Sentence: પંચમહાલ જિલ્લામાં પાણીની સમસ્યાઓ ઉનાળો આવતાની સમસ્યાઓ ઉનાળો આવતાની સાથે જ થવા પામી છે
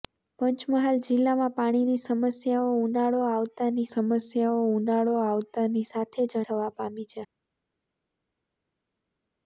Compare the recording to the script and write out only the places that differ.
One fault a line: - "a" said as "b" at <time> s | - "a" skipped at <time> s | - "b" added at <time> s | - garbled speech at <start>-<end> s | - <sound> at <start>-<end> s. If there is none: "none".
none